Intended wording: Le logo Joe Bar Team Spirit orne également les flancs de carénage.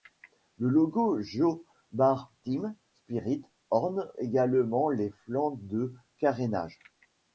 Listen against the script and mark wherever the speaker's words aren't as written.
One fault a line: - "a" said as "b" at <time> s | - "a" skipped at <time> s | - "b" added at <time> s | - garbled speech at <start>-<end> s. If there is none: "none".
none